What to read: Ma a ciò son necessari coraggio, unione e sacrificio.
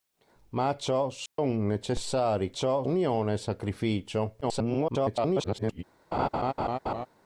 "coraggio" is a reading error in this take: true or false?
true